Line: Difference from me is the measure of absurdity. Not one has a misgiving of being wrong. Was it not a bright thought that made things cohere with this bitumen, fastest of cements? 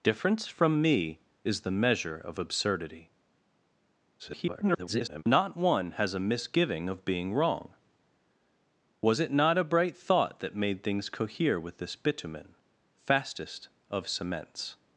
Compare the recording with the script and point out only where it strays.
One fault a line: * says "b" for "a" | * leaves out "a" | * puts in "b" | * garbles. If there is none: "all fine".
* garbles